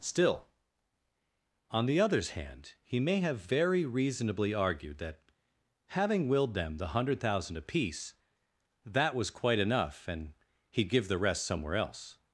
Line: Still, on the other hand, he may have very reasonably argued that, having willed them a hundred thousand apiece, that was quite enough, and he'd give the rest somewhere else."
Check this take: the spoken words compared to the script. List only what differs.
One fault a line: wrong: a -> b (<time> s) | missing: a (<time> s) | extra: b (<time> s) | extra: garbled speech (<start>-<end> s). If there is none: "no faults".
wrong: other -> others (2.0 s)
wrong: a -> the (6.8 s)